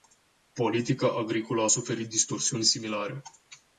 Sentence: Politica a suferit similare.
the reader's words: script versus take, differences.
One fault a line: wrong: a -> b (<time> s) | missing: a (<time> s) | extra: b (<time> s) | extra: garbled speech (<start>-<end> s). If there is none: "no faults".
extra: agricolă (1.1 s)
extra: distorsiuni (2.1 s)